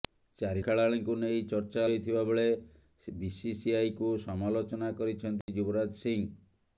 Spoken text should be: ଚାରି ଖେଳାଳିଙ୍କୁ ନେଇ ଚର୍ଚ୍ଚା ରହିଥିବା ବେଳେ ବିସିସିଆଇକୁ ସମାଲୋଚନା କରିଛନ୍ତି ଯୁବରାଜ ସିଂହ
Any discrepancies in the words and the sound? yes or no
yes